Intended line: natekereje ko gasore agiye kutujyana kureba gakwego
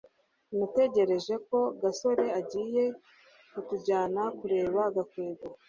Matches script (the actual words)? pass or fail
pass